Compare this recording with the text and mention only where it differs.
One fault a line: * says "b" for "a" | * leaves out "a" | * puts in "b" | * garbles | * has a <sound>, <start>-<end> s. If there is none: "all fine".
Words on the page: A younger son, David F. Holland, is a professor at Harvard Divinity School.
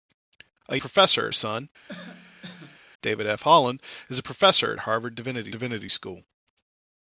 * says "professor" for "younger"
* has a cough, 1.9-2.8 s
* puts in "Divinity"